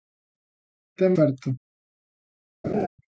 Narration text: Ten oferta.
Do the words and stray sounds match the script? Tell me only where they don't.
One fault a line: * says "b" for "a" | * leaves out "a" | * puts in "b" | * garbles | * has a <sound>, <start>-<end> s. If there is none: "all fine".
* has a laugh, 2.6-2.9 s